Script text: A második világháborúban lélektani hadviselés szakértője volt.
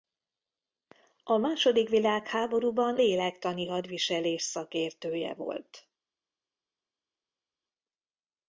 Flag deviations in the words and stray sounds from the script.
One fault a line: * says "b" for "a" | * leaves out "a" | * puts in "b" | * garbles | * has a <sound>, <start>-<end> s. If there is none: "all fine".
all fine